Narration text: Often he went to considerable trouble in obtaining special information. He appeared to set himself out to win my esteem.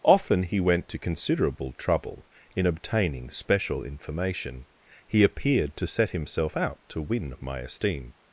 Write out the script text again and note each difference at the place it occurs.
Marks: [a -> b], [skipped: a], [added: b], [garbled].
Often he went to considerable trouble in obtaining special information. He appeared to set himself out to win my esteem.